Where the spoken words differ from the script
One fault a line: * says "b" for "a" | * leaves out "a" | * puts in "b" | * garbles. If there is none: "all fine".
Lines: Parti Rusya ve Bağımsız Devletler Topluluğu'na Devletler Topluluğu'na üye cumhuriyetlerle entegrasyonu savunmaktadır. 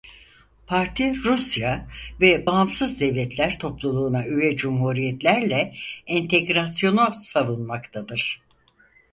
* leaves out "Devletler Topluluğu'na"